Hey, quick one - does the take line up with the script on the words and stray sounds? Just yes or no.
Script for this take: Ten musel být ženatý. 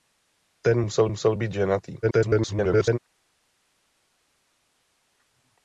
no